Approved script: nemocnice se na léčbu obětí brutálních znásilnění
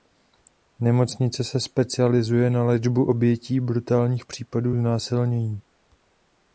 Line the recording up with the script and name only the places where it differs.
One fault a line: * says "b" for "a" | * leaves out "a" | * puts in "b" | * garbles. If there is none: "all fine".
* puts in "specializuje"
* puts in "případů"